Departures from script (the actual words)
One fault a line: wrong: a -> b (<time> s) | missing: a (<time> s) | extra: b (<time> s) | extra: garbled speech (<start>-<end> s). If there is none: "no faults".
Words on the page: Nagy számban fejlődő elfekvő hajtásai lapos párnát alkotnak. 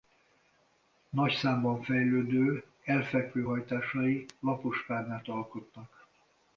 no faults